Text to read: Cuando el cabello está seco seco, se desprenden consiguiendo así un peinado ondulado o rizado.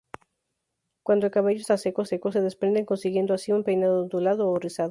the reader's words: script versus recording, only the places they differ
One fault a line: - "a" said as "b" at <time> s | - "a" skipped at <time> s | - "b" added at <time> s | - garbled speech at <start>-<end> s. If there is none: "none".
none